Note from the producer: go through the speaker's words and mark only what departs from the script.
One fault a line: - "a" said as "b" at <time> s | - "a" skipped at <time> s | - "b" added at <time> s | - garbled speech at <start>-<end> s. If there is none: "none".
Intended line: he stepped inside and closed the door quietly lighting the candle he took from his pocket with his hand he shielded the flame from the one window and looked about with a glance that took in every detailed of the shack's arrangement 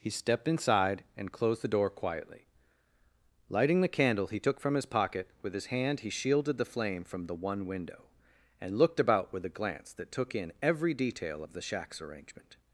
- "detailed" said as "detail" at 10.9 s